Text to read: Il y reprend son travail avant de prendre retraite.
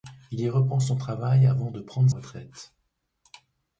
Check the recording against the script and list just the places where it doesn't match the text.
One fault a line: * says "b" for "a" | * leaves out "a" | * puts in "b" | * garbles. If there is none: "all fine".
all fine